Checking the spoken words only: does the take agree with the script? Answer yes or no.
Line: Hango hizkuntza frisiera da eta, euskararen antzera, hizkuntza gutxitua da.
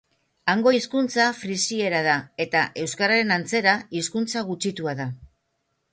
yes